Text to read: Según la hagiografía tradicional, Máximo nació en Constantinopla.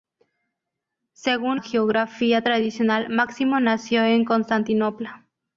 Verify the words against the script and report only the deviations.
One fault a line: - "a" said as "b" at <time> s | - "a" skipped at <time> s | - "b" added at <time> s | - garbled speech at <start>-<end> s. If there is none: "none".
- "la" skipped at 1.6 s